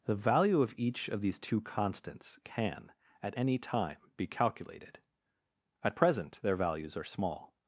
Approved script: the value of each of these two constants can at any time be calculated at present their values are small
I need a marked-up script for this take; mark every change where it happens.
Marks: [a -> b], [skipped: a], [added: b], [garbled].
the value of each of these two constants can at any time be calculated at present their values are small